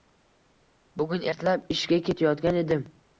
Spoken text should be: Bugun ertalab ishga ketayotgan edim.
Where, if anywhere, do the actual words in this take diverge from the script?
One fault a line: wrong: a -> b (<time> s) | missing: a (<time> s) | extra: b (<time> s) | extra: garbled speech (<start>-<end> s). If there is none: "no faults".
no faults